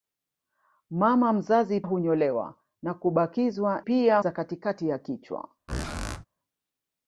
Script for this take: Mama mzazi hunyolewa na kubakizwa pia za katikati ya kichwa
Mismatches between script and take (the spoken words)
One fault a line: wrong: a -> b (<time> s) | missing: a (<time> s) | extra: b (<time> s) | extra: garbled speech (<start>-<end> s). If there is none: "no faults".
no faults